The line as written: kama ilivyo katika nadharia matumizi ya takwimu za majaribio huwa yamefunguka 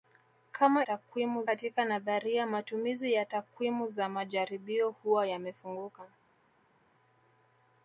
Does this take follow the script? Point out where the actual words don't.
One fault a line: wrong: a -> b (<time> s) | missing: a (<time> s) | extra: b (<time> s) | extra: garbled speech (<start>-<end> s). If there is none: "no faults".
wrong: ilivyo -> takwimu (0.8 s)